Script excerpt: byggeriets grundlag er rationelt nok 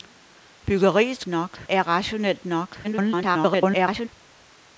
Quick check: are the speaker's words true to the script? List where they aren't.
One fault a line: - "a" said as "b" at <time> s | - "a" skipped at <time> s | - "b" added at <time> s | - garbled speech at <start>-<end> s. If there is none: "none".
- "grundlag" said as "nok" at 1.3 s
- garbled speech at 2.8-4.1 s